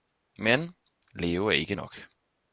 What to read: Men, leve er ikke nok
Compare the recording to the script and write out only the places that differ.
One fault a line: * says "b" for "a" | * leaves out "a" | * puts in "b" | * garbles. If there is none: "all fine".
all fine